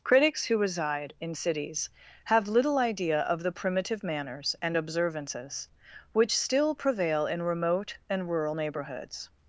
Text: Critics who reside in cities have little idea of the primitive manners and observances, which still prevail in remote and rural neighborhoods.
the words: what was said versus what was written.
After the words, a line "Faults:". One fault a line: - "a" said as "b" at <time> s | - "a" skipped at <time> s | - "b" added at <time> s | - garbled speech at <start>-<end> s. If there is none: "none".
Critics who reside in cities have little idea of the primitive manners and observances, which still prevail in remote and rural neighborhoods.
Faults:
none